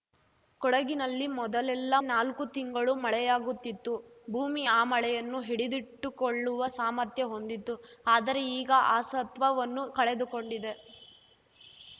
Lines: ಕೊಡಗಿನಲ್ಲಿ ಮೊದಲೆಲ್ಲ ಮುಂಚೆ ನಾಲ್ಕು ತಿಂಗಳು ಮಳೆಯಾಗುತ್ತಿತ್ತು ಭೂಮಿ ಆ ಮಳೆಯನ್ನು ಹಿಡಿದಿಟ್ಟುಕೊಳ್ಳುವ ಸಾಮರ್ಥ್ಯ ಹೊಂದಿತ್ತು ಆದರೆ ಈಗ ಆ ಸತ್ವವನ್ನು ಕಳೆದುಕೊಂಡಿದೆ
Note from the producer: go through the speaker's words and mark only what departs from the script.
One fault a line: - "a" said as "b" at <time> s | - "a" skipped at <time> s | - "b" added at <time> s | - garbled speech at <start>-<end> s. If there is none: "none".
- "ಮುಂಚೆ" skipped at 1.9 s